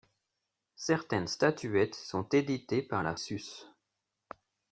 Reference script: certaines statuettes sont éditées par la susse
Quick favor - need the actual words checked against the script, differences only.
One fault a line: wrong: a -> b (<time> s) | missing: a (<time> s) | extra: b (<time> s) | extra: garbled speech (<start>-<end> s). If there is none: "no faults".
no faults